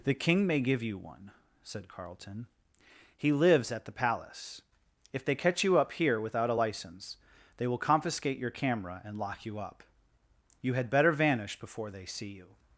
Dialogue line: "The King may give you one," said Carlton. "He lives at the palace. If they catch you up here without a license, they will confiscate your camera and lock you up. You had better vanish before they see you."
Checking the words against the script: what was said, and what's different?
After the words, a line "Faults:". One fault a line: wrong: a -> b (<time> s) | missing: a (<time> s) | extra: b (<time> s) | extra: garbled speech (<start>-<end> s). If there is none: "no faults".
"The King may give you one," said Carlton. "He lives at the palace. If they catch you up here without a license, they will confiscate your camera and lock you up. You had better vanish before they see you."
Faults:
no faults